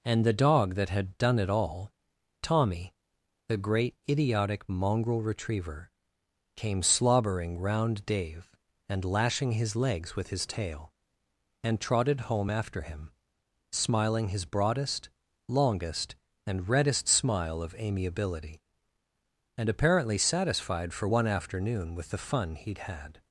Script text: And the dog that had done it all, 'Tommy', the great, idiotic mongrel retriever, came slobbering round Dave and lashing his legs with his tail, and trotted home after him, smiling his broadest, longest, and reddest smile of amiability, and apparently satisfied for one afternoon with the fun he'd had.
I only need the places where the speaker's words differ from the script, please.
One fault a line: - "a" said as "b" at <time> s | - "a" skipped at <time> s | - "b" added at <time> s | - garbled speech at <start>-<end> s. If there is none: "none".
none